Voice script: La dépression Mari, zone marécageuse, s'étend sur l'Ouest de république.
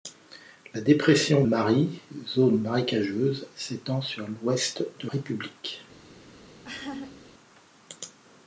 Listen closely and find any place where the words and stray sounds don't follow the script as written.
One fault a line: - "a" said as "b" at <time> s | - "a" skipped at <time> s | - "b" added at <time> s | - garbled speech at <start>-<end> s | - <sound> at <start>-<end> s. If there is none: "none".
- laugh at 6.6-7.2 s